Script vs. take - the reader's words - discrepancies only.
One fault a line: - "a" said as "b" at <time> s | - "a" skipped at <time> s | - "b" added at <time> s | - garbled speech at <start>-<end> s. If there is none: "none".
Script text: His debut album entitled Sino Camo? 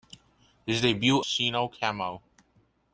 - "album entitled" skipped at 1.2 s